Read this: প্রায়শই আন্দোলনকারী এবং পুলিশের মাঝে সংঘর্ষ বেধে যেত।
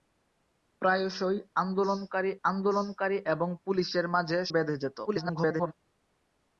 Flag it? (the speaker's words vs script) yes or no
yes